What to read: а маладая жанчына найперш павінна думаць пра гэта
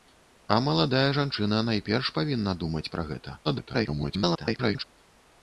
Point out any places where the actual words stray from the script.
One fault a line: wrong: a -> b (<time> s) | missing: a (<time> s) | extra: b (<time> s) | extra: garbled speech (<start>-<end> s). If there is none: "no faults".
extra: garbled speech (3.4-4.8 s)